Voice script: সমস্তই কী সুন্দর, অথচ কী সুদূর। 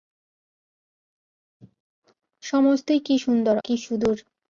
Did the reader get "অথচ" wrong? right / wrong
wrong